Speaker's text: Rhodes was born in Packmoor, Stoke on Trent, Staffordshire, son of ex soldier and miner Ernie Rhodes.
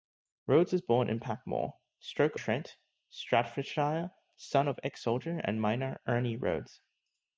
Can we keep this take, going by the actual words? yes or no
no